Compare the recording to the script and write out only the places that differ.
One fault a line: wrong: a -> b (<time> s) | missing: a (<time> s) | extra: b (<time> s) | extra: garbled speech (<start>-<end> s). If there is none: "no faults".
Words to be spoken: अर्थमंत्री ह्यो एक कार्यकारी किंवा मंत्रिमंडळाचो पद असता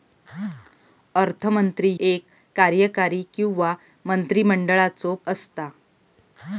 missing: ह्यो (1.9 s)
missing: पद (5.1 s)